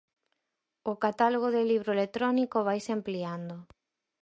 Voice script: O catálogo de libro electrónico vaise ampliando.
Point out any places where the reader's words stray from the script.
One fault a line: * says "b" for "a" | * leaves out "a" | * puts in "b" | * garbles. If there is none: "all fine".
all fine